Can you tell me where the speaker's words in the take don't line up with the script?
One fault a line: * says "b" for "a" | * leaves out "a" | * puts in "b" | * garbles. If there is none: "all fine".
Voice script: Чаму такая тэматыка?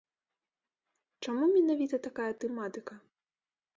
* puts in "менавіта"